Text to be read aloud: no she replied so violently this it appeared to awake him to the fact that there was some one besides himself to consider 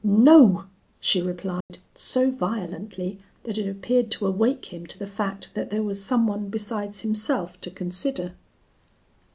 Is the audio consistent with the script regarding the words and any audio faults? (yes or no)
no